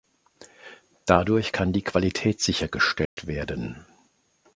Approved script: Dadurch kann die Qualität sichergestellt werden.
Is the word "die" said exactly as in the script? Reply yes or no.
yes